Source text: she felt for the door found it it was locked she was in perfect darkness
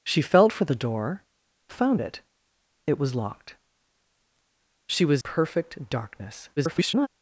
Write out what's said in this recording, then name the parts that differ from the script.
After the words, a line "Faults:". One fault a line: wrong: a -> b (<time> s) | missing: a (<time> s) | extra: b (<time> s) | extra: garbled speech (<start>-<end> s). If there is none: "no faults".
she felt for the door found it it was locked she was perfect darkness [garbled]
Faults:
missing: in (5.2 s)
extra: garbled speech (6.6-7.1 s)